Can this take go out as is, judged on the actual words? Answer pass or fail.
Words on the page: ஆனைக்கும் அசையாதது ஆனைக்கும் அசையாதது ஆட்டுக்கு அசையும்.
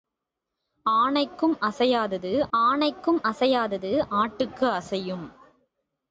pass